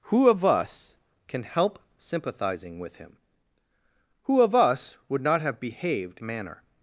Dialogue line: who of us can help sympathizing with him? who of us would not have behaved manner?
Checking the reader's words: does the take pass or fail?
pass